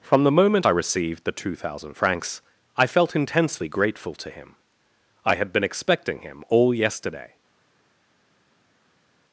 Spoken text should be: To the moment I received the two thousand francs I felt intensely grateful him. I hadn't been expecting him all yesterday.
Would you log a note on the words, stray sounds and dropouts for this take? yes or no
yes